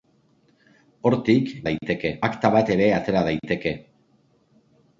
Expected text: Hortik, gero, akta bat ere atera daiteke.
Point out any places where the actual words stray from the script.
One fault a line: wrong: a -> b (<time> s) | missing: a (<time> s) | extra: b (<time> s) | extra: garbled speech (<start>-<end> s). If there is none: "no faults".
wrong: gero -> daiteke (1.7 s)